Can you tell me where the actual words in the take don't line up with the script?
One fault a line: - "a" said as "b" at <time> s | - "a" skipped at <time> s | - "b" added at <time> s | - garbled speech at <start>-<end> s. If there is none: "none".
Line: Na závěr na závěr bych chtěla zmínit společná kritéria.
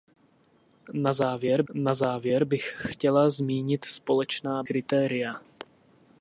none